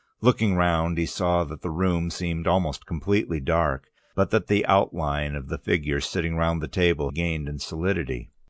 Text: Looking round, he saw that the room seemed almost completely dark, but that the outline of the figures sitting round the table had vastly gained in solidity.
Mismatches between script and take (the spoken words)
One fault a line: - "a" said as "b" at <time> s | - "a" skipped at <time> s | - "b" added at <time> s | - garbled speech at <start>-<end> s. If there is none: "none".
- "had vastly" skipped at 7.1 s